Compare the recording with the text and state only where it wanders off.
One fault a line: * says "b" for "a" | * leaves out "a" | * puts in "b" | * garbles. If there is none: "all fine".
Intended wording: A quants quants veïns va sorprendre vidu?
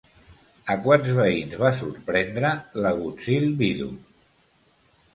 * leaves out "quants"
* puts in "l'agutzil"